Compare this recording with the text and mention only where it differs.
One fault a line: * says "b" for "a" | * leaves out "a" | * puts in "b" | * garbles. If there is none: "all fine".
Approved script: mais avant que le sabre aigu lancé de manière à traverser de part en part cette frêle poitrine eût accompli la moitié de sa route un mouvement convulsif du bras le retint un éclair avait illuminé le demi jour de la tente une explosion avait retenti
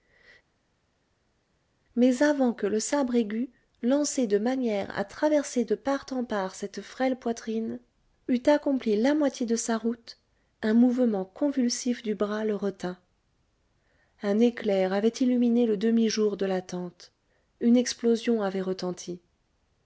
all fine